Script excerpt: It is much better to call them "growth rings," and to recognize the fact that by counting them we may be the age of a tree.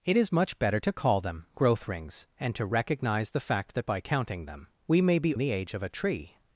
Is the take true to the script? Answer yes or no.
yes